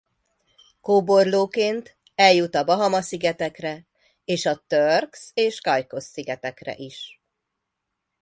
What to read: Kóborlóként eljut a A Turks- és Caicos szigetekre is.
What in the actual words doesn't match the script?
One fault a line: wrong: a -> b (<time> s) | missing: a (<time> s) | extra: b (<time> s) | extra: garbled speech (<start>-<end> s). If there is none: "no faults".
extra: Bahama szigetekre és (2.6 s)